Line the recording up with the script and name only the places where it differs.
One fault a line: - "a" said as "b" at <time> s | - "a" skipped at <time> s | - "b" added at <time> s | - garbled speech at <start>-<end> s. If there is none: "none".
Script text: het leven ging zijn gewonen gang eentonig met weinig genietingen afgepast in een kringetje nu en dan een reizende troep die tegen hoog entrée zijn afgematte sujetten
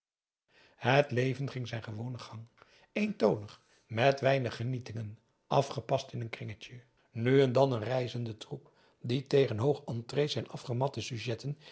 none